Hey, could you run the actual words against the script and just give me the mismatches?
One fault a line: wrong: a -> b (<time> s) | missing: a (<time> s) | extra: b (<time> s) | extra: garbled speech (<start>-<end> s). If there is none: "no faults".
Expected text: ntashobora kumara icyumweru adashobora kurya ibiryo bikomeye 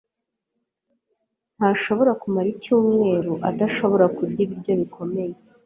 no faults